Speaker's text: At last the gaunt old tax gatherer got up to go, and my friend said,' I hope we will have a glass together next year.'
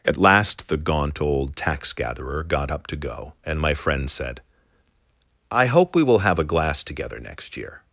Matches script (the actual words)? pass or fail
pass